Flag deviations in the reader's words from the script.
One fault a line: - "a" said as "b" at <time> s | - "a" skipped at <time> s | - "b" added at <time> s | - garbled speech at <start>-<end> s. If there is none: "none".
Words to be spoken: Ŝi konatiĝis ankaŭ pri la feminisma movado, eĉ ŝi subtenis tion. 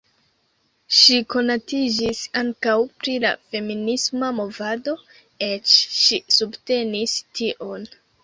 none